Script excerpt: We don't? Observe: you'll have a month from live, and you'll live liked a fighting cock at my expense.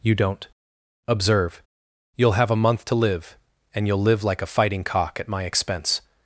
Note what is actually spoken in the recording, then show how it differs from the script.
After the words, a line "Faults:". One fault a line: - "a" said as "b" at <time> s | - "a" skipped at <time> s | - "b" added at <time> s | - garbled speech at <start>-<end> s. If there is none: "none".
You don't? Observe: you'll have a month to live, and you'll live like a fighting cock at my expense.
Faults:
- "We" said as "You" at 0.0 s
- "from" said as "to" at 2.9 s
- "liked" said as "like" at 4.2 s